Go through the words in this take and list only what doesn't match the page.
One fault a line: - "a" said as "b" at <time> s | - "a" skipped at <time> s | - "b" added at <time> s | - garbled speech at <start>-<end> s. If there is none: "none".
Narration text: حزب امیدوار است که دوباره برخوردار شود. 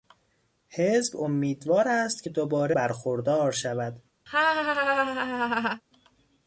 none